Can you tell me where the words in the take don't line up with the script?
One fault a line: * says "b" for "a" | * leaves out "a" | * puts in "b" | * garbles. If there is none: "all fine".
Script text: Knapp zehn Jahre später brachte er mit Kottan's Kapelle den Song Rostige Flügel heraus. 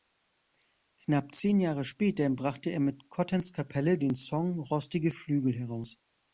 all fine